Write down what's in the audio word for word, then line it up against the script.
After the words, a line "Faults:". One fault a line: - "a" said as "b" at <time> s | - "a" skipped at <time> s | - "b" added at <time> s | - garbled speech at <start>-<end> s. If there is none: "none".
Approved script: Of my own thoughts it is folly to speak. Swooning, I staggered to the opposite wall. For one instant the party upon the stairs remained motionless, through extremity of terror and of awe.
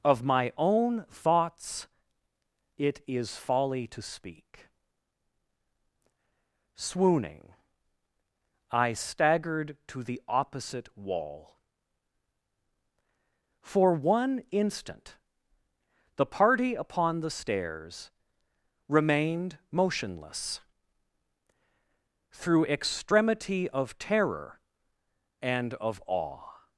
Of my own thoughts it is folly to speak. Swooning, I staggered to the opposite wall. For one instant the party upon the stairs remained motionless, through extremity of terror and of awe.
Faults:
none